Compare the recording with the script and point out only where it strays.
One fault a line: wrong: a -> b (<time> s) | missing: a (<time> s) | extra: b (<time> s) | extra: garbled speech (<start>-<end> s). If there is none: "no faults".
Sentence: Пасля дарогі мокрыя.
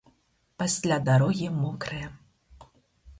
no faults